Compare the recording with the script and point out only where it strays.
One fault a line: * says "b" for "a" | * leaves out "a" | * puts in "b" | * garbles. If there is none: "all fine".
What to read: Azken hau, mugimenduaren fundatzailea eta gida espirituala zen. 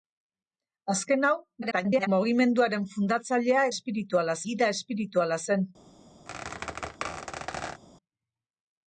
* garbles
* says "espirituala" for "eta"